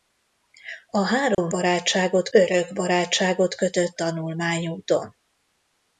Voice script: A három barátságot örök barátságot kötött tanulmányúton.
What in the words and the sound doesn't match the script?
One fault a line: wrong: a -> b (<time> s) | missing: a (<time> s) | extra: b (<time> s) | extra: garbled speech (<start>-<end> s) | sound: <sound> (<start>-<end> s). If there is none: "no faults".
sound: dropout (1.3-1.4 s)